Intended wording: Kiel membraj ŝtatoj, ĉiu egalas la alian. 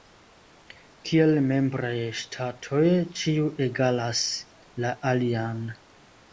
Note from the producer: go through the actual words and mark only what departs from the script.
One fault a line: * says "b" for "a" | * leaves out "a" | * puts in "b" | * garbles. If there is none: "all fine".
all fine